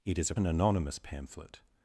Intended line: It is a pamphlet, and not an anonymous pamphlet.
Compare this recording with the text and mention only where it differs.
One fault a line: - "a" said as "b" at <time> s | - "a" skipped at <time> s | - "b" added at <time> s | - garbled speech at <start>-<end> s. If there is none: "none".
- "pamphlet and not" skipped at 0.3 s